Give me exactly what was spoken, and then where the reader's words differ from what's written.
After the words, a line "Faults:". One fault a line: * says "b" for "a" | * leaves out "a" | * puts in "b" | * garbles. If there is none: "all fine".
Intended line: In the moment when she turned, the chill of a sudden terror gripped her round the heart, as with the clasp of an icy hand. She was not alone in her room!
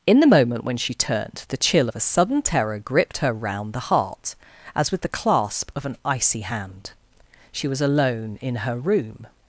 In the moment when she turned, the chill of a sudden terror gripped her round the heart, as with the clasp of an icy hand. She was alone in her room!
Faults:
* leaves out "not"